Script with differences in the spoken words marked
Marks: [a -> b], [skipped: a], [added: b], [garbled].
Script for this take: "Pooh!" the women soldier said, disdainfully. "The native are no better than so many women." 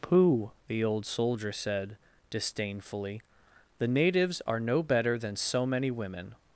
"Pooh!" the [women -> old] soldier said, disdainfully. "The [native -> natives] are no better than so many women."